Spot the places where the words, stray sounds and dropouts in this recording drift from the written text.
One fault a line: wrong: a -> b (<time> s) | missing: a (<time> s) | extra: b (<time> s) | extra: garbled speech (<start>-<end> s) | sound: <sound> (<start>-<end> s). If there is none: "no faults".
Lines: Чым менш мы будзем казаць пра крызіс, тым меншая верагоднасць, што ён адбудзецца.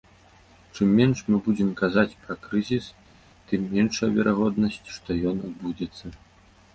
no faults